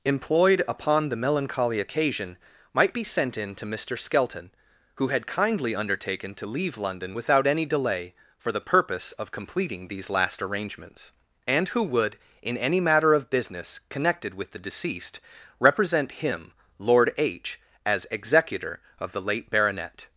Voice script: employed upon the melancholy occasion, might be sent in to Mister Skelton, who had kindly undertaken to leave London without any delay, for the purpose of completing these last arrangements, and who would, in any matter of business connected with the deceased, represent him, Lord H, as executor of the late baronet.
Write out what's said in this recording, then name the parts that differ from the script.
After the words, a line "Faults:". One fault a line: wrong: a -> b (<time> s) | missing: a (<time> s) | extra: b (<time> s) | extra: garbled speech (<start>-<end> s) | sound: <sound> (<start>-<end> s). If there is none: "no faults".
employed upon the melancholy occasion, might be sent in to Mister Skelton, who had kindly undertaken to leave London without any delay, for the purpose of completing these last arrangements, and who would, in any matter of business connected with the deceased, represent him, Lord H, as executor of the late baronet.
Faults:
no faults